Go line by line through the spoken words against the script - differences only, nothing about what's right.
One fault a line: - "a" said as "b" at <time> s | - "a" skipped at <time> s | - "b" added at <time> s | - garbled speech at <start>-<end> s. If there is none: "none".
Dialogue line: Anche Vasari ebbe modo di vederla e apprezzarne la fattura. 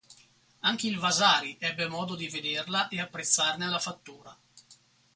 - "il" added at 0.9 s